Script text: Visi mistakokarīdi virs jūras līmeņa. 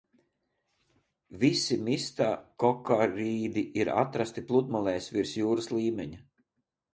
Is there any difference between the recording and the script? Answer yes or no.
yes